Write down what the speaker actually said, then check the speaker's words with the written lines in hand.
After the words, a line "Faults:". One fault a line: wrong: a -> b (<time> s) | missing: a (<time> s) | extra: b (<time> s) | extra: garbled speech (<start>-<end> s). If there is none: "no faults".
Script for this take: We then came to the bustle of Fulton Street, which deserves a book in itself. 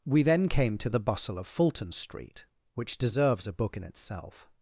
We then came to the bustle of Fulton Street, which deserves a book in itself.
Faults:
no faults